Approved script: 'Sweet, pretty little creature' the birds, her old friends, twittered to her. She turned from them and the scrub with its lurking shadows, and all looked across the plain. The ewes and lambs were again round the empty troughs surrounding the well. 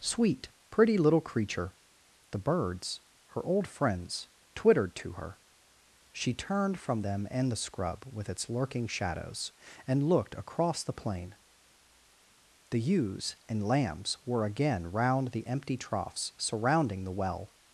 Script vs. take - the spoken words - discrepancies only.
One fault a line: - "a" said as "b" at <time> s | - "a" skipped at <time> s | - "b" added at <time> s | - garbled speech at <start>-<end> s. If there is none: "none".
- "all" skipped at 10.1 s